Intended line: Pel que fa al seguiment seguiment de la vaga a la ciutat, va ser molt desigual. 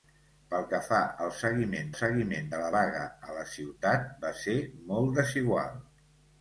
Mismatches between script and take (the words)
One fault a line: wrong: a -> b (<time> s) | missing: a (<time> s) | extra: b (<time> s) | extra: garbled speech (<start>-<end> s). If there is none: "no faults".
no faults